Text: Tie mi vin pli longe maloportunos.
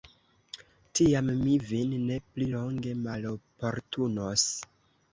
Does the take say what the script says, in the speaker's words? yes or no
no